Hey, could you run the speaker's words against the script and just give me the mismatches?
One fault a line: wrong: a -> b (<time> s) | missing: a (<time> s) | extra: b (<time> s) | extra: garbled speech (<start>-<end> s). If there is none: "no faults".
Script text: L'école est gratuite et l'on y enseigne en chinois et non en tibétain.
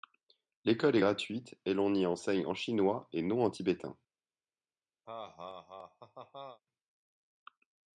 no faults